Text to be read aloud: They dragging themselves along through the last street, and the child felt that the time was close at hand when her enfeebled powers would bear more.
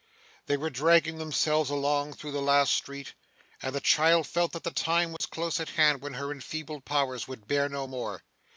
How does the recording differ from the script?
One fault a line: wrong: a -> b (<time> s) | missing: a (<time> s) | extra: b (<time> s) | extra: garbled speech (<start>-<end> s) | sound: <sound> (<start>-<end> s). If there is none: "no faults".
extra: were (0.6 s)
sound: dropout (5.2-5.2 s)
extra: no (7.7 s)